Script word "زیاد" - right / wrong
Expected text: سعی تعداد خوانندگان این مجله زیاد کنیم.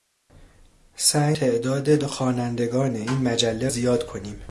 right